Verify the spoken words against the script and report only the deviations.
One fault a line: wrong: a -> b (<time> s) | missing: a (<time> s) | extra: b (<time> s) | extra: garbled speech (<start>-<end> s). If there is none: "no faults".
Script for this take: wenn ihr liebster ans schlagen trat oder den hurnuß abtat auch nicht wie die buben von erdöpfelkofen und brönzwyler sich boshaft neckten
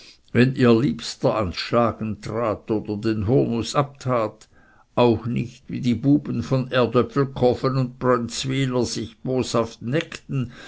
no faults